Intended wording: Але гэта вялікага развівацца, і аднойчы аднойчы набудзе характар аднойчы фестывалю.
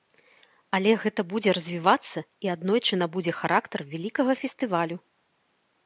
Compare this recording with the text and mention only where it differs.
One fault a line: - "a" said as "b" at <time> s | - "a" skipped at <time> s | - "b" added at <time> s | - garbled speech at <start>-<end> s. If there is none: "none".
- "вялікага" said as "будзе" at 1.3 s
- "аднойчы" skipped at 2.9 s
- "аднойчы" said as "вялікага" at 4.0 s